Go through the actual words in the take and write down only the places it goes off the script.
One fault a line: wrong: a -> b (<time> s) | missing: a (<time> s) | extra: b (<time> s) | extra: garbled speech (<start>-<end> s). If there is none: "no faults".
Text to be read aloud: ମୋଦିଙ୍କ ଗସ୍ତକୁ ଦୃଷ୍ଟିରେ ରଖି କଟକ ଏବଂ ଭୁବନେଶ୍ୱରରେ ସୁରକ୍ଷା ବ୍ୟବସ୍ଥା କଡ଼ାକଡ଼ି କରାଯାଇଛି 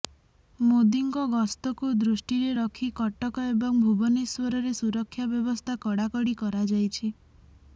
no faults